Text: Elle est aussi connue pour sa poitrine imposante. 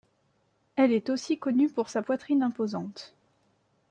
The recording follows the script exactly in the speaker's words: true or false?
true